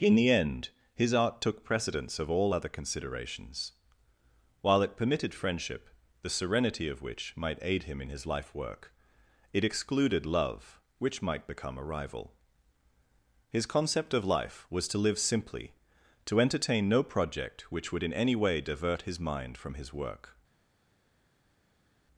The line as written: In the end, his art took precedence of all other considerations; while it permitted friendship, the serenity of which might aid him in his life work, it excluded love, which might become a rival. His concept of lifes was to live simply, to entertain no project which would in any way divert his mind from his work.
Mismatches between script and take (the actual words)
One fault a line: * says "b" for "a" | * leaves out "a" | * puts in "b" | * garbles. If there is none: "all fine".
* says "life" for "lifes"